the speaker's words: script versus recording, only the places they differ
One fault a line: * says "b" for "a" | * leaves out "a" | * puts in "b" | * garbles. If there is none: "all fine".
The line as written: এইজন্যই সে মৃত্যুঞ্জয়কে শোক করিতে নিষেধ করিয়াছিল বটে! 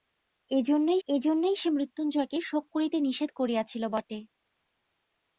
* puts in "এইজন্যই"